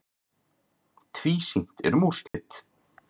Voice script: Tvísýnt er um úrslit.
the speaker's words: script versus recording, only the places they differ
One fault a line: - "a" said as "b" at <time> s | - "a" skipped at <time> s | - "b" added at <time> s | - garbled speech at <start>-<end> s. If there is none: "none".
none